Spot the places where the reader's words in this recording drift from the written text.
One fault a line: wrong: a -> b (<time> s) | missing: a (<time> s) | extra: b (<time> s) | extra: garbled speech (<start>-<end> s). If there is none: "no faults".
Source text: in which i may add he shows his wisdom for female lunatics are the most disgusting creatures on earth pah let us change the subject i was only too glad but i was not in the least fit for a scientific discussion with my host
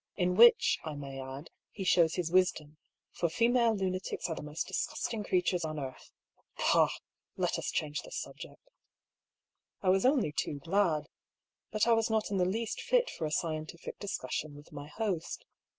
no faults